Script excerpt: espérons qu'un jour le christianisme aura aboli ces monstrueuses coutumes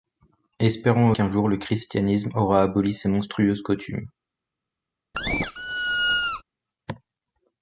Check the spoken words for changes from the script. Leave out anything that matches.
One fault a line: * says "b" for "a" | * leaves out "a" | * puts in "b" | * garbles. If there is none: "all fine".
all fine